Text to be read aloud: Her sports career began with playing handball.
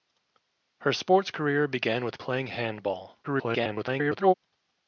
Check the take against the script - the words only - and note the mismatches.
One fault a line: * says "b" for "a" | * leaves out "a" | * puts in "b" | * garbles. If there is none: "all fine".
* garbles